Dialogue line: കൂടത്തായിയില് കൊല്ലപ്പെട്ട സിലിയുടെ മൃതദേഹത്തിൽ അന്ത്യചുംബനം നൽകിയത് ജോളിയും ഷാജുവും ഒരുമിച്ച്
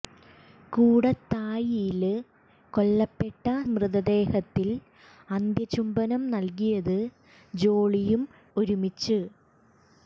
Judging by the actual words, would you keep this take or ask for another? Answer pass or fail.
fail